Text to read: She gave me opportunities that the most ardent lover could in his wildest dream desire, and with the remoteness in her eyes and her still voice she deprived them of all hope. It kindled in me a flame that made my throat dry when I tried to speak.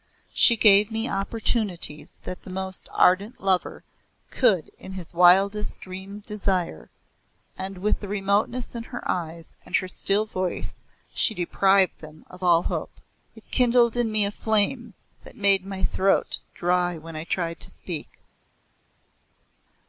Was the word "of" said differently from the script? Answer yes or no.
no